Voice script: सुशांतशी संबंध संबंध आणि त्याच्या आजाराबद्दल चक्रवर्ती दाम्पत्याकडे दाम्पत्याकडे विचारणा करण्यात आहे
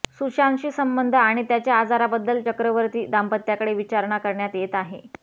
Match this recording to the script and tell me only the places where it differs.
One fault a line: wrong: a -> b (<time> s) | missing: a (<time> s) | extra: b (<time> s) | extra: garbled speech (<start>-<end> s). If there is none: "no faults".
missing: संबंध (1.1 s)
missing: दाम्पत्याकडे (3.7 s)
extra: येत (4.5 s)